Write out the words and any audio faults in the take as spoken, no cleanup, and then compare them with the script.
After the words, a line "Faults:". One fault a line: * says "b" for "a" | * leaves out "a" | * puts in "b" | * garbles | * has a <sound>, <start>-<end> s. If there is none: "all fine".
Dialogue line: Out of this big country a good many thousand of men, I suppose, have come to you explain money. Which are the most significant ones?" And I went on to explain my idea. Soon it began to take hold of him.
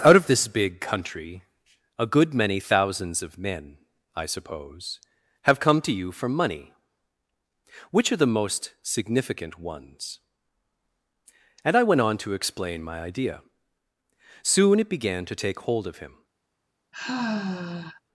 Out of this big country a good many thousands of men, I suppose, have come to you for money. Which are the most significant ones?" And I went on to explain my idea. Soon it began to take hold of him.
Faults:
* says "thousands" for "thousand"
* says "for" for "explain"
* has a sigh, 16.9-18.0 s